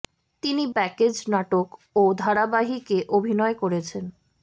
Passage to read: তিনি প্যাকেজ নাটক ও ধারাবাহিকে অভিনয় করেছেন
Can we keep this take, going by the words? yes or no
yes